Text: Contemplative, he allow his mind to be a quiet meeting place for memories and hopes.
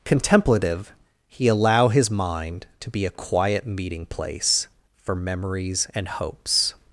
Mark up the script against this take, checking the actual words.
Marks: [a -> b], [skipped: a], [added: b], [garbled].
Contemplative, he allow his mind to be a quiet meeting place for memories and hopes.